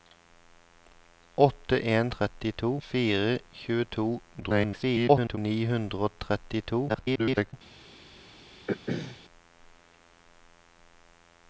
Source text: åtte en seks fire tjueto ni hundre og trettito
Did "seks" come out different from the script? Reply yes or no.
yes